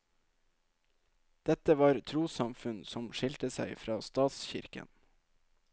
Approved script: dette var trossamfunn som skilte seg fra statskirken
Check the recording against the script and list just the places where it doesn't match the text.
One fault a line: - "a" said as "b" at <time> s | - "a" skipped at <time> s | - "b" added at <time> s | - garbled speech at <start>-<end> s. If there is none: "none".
none